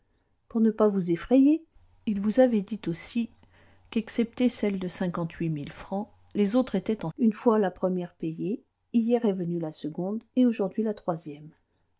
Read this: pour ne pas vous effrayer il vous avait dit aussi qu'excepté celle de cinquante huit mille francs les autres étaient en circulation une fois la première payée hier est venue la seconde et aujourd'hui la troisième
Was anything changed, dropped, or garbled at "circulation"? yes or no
yes